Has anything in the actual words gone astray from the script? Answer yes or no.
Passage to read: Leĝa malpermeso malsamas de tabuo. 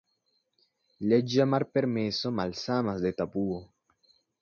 no